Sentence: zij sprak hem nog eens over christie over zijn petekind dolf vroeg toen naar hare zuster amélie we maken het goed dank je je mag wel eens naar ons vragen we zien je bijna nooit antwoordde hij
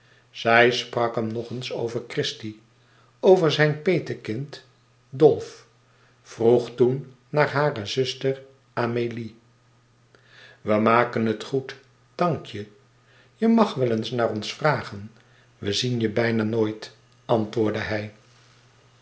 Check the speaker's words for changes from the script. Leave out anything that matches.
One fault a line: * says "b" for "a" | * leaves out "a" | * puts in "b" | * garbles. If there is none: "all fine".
all fine